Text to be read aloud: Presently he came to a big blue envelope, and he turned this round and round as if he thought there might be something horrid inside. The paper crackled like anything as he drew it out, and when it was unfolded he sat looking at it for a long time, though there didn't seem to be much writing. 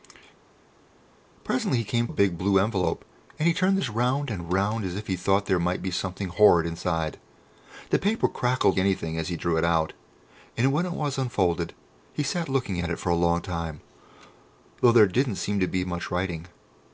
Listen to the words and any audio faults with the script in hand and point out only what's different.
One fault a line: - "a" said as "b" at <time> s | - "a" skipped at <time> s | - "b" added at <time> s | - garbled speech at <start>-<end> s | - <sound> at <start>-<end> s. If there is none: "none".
- "to" skipped at 2.1 s
- "like" skipped at 8.8 s